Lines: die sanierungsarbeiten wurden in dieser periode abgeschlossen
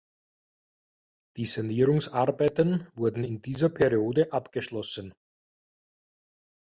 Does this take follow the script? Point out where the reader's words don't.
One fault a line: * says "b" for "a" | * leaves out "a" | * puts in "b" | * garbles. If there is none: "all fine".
all fine